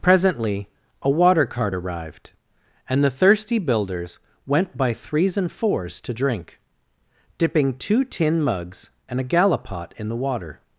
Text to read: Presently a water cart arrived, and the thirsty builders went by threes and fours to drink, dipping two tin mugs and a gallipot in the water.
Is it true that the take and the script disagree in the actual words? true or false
false